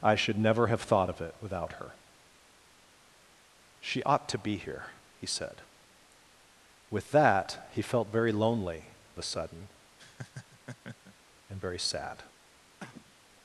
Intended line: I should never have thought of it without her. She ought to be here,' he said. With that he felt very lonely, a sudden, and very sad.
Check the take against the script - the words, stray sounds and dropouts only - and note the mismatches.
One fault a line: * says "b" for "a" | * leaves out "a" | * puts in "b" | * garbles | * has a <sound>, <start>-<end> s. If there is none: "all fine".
* has a laugh, 10.0-11.1 s
* has a cough, 12.8-13.2 s